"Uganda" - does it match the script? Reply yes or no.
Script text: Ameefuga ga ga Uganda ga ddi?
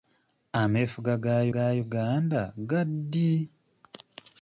yes